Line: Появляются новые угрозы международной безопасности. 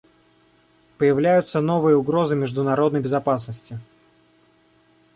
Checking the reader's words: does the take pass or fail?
pass